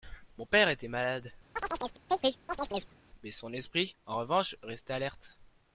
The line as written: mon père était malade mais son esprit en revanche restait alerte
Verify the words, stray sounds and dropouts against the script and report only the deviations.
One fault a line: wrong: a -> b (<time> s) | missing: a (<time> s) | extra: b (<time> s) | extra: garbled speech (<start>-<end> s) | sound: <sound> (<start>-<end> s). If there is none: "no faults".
sound: chirp (1.6-3.0 s)